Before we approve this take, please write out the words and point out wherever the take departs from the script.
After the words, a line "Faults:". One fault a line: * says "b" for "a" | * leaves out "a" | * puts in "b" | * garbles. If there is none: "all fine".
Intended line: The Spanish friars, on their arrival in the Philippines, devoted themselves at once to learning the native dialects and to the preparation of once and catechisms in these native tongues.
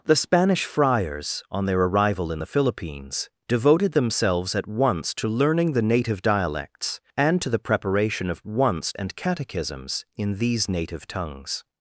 The Spanish friars, on their arrival in the Philippines, devoted themselves at once to learning the native dialects and to the preparation of once and catechisms in these native tongues.
Faults:
all fine